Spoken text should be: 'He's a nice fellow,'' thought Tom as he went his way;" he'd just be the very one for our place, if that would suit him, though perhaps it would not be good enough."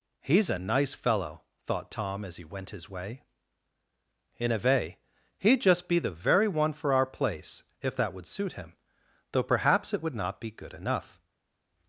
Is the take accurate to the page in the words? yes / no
no